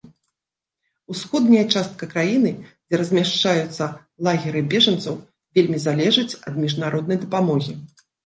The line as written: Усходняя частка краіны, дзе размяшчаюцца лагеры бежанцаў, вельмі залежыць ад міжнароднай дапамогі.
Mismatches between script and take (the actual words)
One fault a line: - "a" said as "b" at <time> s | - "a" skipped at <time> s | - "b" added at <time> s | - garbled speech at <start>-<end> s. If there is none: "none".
none